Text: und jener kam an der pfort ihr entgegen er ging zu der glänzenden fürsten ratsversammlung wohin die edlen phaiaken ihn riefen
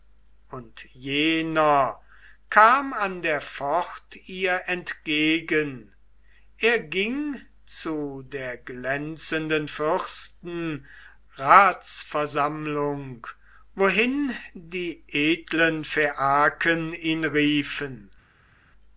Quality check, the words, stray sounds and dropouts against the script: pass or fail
pass